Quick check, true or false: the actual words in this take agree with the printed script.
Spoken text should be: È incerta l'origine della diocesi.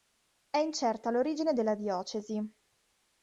true